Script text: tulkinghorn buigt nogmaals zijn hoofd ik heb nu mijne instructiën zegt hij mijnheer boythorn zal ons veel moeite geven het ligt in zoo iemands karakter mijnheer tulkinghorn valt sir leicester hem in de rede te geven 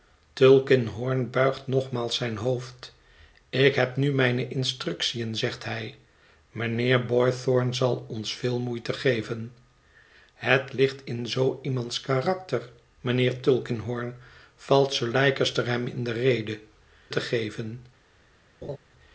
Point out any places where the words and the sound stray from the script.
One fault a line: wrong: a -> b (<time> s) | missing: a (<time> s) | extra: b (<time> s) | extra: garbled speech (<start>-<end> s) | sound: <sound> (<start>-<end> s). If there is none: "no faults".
sound: laugh (18.6-18.8 s)